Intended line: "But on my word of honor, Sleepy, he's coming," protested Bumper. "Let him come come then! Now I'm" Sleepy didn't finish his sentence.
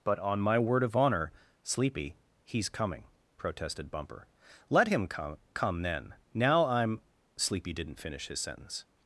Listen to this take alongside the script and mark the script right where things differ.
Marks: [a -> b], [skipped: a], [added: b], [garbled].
"But on my word of honor, Sleepy, he's coming," protested Bumper. "Let him come come then! Now I'm" Sleepy didn't finish his sentence.